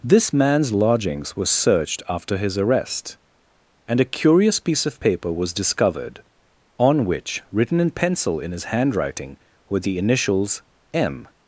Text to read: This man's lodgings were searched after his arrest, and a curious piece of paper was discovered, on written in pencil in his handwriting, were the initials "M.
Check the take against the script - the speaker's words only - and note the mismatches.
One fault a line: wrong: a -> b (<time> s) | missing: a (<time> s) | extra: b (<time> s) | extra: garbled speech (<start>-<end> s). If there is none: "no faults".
extra: which (7.0 s)